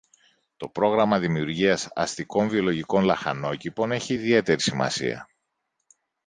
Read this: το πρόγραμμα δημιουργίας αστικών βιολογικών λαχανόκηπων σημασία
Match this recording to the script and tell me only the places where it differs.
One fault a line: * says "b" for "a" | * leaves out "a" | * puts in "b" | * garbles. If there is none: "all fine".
* puts in "έχει ιδιαίτερη"